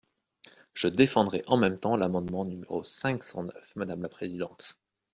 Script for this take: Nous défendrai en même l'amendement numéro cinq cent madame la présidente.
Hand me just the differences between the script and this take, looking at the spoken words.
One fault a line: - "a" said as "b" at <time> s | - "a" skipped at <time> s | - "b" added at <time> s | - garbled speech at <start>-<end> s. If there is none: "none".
- "Nous" said as "Je" at 0.7 s
- "temps" added at 1.8 s
- "neuf" added at 3.4 s